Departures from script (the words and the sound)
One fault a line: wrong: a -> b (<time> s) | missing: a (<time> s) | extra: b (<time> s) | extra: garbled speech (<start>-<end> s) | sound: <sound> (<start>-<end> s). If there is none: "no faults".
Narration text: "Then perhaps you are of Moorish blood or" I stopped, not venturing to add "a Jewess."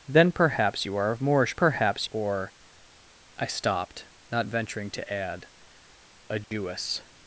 wrong: blood -> perhaps (1.5 s)
sound: dropout (6.4-6.5 s)